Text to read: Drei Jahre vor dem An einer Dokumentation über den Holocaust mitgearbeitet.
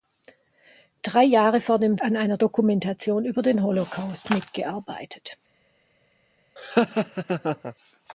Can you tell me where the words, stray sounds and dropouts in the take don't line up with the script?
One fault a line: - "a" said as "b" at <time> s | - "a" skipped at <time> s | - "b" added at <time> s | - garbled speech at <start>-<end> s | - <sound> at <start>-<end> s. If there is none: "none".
- laugh at 6.6-7.7 s